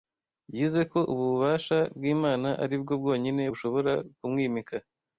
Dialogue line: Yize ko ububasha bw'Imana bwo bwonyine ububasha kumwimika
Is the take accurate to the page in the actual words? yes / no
no